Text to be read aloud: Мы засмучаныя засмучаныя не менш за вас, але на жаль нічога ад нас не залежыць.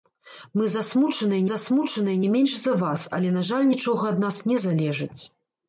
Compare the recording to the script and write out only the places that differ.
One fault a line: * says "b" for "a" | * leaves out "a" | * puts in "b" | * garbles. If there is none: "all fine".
all fine